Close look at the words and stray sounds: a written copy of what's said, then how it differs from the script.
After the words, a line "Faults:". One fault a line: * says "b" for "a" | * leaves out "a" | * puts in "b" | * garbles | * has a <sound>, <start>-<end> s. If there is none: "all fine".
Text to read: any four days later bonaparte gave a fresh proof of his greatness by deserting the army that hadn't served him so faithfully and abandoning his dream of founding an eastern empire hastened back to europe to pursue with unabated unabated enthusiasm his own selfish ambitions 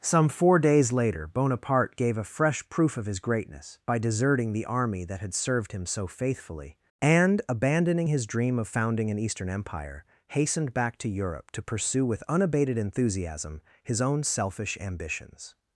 some four days later bonaparte gave a fresh proof of his greatness by deserting the army that had served him so faithfully and abandoning his dream of founding an eastern empire hastened back to europe to pursue with unabated enthusiasm his own selfish ambitions
Faults:
* says "some" for "any"
* says "had" for "hadn't"
* leaves out "unabated"